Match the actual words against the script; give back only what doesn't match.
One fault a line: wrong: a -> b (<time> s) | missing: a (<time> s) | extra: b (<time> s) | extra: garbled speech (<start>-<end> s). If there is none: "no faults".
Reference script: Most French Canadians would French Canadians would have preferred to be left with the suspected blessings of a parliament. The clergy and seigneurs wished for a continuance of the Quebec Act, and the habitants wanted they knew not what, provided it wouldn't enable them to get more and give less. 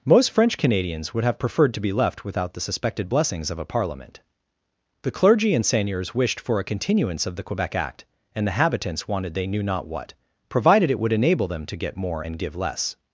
missing: French Canadians would (1.2 s)
wrong: with -> without (2.2 s)
wrong: wouldn't -> would (11.0 s)